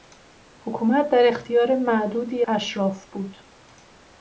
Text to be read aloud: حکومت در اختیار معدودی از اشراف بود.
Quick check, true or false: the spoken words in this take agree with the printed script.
false